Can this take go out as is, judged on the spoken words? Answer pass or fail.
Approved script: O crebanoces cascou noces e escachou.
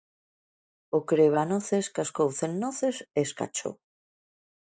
fail